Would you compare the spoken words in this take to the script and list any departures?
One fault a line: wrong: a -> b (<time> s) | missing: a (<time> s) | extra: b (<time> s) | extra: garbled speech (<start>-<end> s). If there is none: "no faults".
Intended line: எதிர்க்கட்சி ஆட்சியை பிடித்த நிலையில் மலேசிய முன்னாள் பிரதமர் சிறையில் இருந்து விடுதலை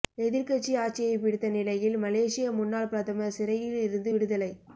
no faults